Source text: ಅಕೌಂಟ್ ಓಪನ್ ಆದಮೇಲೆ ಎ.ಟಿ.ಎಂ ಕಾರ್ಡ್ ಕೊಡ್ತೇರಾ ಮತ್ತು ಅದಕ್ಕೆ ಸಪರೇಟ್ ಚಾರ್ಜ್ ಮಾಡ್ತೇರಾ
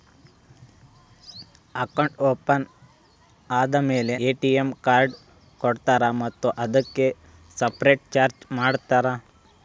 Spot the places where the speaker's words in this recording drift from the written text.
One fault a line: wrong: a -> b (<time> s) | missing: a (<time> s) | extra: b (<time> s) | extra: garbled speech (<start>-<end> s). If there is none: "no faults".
no faults